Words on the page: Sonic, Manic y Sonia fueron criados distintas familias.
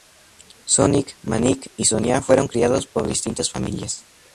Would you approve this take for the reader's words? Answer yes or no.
no